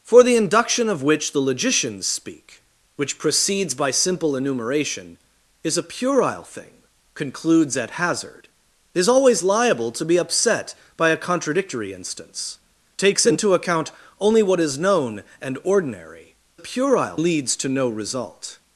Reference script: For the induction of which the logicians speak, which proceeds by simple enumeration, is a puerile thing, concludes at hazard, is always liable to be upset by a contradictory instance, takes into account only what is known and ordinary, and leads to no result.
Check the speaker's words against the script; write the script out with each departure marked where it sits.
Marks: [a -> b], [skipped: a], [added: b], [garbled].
For the induction of which the logicians speak, which proceeds by simple enumeration, is a puerile thing, concludes at hazard, is always liable to be upset by a contradictory instance, takes into account only what is known and ordinary, [and -> puerile] leads to no result.